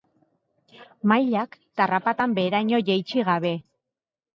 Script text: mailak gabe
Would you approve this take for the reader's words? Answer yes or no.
no